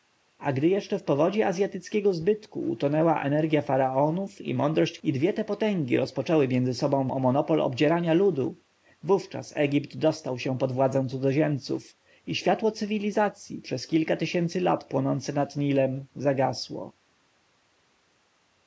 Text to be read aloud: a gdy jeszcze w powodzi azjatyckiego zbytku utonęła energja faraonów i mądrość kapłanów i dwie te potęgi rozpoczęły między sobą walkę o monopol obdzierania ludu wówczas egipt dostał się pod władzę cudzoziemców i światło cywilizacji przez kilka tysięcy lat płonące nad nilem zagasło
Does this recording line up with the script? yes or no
no